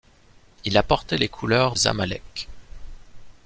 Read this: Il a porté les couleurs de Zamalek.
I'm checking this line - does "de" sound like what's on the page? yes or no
no